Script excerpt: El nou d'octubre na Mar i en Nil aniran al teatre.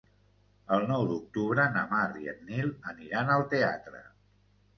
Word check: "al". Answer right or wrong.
right